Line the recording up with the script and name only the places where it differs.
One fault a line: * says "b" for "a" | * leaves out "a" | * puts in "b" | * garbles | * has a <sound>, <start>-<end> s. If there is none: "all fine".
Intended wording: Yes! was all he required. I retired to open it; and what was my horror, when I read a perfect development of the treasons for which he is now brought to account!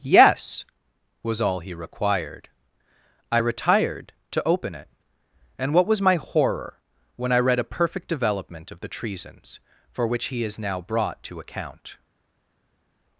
all fine